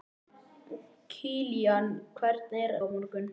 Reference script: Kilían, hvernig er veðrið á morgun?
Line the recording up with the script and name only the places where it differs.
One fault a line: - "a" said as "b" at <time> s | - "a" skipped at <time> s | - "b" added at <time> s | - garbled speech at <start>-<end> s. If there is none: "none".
- "veðrið" skipped at 2.8 s